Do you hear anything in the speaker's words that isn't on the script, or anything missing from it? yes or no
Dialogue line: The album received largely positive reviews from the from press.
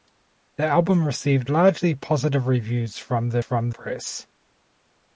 no